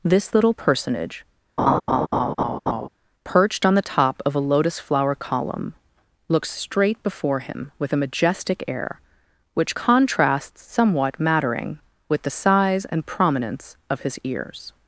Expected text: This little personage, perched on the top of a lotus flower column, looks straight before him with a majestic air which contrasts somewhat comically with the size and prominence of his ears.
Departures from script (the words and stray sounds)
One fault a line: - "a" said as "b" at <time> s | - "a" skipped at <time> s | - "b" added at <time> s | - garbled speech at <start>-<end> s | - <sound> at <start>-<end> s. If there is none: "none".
- laugh at 1.6-2.9 s
- "comically" said as "mattering" at 11.2 s